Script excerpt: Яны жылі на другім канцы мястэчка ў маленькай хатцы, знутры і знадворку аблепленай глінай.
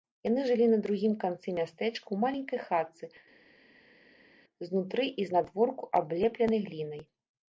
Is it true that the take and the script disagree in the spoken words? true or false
false